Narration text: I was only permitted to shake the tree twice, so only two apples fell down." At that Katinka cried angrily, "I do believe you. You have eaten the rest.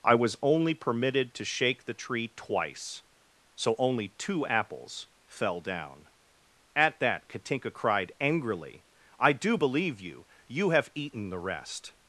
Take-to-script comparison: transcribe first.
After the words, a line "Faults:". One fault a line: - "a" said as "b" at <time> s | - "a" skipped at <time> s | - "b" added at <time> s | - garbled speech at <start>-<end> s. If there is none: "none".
I was only permitted to shake the tree twice, so only two apples fell down." At that Katinka cried angrily, "I do believe you. You have eaten the rest.
Faults:
none